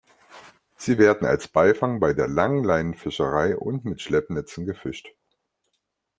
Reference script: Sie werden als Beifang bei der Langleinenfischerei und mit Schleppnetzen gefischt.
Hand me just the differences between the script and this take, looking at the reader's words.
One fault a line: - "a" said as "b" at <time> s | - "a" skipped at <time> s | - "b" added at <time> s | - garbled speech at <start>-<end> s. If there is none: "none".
none